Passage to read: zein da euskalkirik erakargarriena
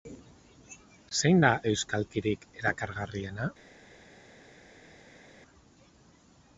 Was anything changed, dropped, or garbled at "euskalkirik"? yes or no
no